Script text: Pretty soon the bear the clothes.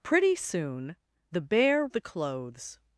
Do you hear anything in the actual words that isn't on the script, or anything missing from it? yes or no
no